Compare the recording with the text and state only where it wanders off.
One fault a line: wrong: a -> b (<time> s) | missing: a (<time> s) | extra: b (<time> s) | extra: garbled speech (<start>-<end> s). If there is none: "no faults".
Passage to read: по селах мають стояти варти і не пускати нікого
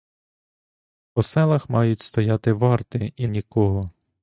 missing: не пускати (3.3 s)